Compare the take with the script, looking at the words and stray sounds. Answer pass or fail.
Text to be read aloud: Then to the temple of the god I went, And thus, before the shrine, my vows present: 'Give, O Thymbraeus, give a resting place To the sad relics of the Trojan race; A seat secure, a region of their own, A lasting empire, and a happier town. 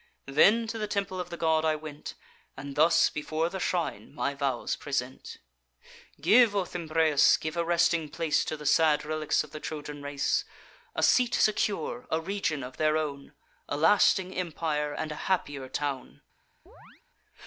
fail